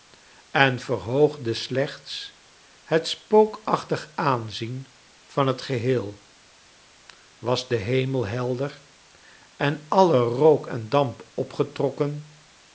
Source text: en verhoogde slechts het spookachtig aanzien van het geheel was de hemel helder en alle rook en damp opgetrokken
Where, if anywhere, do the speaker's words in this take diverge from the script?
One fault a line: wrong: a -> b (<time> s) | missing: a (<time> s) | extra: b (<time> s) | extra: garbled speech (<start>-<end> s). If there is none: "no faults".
no faults